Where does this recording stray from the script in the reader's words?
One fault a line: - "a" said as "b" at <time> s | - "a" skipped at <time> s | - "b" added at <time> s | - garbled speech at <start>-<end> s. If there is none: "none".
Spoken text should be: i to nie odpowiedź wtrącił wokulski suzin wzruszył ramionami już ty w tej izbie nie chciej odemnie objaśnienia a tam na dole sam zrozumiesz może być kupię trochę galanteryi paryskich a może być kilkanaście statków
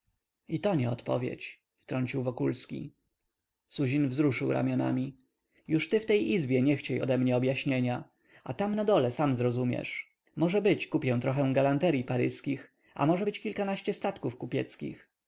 none